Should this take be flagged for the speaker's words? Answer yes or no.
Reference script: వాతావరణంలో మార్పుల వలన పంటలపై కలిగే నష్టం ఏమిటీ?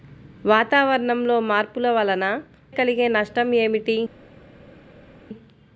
yes